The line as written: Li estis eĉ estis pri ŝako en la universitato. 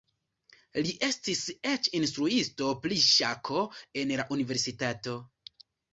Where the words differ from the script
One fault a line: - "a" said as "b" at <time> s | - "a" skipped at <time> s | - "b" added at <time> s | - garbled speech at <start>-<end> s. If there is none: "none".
- "estis" said as "instruisto" at 2.0 s